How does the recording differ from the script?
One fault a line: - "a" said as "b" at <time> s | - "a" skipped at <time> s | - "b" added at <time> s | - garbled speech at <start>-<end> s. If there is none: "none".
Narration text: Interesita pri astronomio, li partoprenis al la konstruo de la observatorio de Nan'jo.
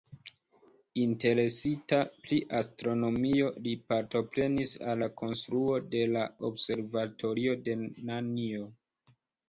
none